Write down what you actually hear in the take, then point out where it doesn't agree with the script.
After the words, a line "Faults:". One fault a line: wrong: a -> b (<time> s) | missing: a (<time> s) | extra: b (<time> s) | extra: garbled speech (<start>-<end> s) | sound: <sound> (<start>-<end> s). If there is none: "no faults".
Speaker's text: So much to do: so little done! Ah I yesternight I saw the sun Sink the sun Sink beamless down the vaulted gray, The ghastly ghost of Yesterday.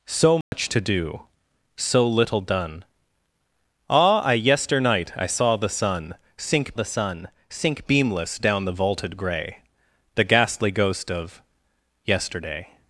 So much to do: so little done! Ah I yesternight I saw the sun Sink the sun Sink beamless down the vaulted gray, The ghastly ghost of Yesterday.
Faults:
sound: dropout (0.4-0.5 s)